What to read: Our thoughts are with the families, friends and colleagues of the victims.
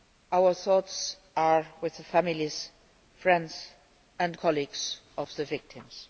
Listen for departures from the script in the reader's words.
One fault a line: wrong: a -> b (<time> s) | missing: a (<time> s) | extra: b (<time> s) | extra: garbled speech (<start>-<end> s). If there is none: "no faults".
no faults